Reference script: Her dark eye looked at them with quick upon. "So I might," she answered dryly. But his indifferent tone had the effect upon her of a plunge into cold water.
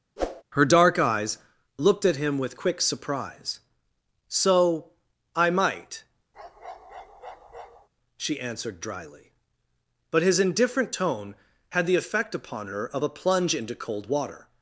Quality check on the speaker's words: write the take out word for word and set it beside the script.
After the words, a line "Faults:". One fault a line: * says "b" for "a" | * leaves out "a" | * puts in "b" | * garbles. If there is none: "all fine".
Her dark eyes looked at him with quick surprise. "So I might," she answered dryly. But his indifferent tone had the effect upon her of a plunge into cold water.
Faults:
* says "eyes" for "eye"
* says "him" for "them"
* says "surprise" for "upon"